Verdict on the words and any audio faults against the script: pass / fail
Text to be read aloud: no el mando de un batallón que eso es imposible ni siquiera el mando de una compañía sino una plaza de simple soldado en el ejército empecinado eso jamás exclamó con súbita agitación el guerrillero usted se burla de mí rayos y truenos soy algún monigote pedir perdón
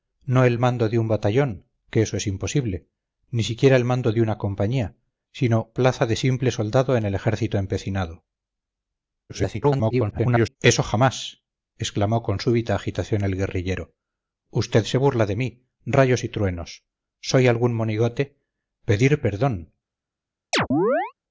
fail